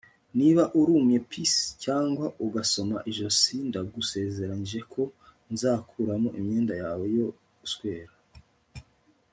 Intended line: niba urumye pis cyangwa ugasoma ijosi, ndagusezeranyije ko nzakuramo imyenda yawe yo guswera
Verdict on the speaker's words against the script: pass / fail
pass